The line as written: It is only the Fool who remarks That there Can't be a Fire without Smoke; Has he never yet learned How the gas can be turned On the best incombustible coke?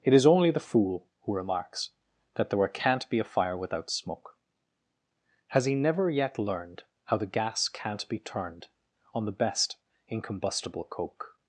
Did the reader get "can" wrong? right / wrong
wrong